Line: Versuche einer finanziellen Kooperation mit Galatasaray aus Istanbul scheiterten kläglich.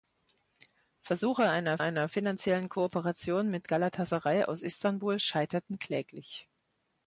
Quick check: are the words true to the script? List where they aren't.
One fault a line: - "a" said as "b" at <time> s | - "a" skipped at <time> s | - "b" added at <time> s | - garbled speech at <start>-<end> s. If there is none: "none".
- "einer" added at 1.8 s